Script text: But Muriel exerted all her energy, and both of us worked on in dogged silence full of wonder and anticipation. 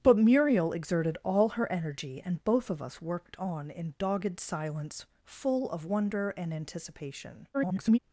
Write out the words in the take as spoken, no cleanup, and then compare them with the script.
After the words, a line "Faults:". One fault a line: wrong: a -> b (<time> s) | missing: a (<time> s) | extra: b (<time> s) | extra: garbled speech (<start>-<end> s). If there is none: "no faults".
But Muriel exerted all her energy, and both of us worked on in dogged silence full of wonder and anticipation. [garbled]
Faults:
extra: garbled speech (7.5-8.0 s)